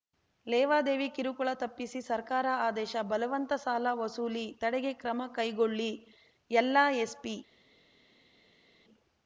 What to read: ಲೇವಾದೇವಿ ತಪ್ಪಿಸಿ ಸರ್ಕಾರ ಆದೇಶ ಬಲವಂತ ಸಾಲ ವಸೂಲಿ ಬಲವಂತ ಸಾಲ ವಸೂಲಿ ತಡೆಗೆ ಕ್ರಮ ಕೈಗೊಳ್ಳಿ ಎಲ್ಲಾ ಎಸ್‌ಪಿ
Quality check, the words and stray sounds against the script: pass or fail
fail